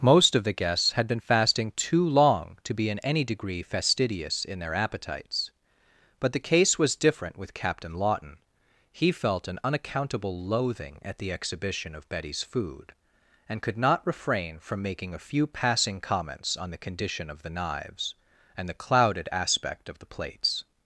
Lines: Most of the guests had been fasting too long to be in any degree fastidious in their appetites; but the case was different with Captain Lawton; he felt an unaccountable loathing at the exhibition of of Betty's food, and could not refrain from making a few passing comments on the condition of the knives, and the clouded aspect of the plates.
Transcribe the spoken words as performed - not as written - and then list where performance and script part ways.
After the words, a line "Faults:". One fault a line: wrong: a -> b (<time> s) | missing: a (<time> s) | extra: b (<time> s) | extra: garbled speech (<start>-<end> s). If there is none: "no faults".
Most of the guests had been fasting too long to be in any degree fastidious in their appetites; but the case was different with Captain Lawton; he felt an unaccountable loathing at the exhibition of Betty's food, and could not refrain from making a few passing comments on the condition of the knives, and the clouded aspect of the plates.
Faults:
missing: of (12.1 s)